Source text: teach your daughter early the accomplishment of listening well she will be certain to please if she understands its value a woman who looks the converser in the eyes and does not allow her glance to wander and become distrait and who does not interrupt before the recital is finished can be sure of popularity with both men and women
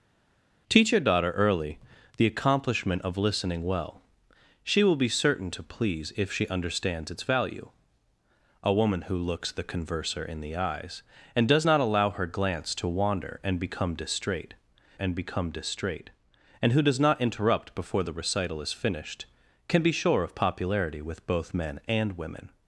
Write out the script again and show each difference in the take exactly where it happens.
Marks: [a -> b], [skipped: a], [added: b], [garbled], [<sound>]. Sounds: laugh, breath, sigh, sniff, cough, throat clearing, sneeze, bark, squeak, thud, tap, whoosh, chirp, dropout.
teach your daughter early the accomplishment of listening well she will be certain to please if she understands its value a woman who looks the converser in the eyes and does not allow her glance to wander and become distrait and [added: become distrait and] who does not interrupt before the recital is finished can be sure of popularity with both men and women